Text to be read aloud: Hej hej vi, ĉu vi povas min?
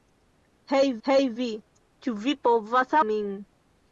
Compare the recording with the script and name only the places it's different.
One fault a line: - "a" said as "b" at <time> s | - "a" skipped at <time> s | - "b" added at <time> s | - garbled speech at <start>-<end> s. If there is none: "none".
none